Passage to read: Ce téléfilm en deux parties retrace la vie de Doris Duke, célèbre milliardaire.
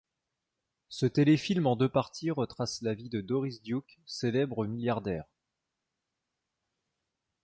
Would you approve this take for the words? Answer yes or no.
yes